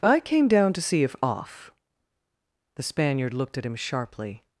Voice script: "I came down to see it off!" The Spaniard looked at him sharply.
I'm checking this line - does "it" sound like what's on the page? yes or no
no